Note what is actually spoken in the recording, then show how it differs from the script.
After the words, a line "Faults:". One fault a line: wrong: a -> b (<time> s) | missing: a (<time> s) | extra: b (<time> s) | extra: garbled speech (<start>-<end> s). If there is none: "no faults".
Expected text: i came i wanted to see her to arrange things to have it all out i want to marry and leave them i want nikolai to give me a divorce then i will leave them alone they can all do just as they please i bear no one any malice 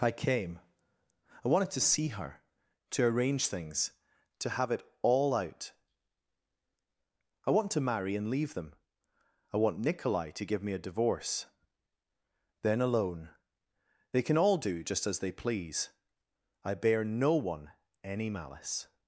i came i wanted to see her to arrange things to have it all out i want to marry and leave them i want nikolai to give me a divorce then alone they can all do just as they please i bear no one any malice
Faults:
missing: i will leave them (12.8 s)